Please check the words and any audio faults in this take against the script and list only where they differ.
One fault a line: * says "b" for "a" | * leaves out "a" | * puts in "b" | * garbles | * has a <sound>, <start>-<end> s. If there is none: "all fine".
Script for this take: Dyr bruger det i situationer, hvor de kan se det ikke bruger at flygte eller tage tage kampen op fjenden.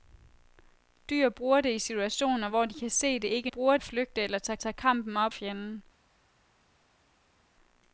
all fine